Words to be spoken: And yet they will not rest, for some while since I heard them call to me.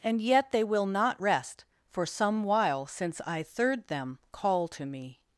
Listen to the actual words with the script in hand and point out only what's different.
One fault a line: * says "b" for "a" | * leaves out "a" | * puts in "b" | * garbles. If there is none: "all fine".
* says "third" for "heard"